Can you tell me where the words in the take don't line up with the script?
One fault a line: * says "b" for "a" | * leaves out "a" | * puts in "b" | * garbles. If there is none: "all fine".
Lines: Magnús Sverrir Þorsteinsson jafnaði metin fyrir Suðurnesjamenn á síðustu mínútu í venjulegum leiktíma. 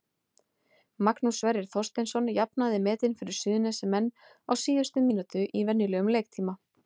all fine